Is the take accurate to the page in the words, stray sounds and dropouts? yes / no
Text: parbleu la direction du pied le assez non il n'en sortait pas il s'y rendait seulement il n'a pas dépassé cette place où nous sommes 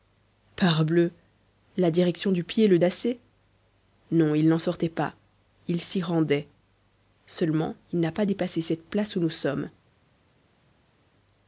yes